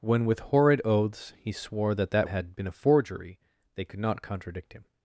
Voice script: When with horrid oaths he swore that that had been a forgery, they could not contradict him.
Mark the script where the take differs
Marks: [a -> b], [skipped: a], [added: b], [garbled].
When with horrid oaths he swore that that had been a forgery, they could not contradict him.